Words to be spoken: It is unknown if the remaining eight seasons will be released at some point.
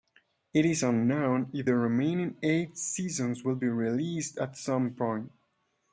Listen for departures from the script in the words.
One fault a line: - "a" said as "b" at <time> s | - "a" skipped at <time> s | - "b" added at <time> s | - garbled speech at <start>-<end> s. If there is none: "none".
none